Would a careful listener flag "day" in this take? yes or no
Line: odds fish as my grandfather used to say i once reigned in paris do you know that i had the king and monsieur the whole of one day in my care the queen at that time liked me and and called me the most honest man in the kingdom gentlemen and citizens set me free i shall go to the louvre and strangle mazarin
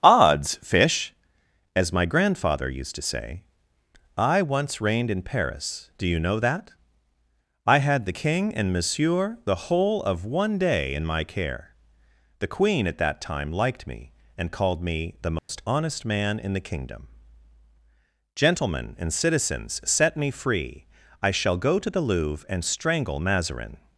no